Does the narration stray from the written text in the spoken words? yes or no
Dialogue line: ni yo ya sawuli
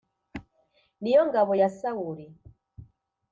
yes